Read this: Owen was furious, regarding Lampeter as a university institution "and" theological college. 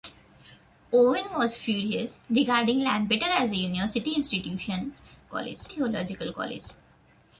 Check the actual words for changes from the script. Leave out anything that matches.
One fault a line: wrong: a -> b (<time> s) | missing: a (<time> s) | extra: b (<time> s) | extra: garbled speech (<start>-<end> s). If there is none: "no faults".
wrong: and -> college (5.3 s)